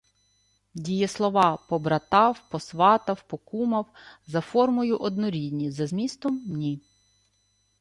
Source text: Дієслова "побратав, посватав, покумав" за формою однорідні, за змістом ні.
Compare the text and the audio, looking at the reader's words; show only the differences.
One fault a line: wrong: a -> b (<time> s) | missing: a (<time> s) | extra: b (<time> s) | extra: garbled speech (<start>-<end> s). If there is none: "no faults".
no faults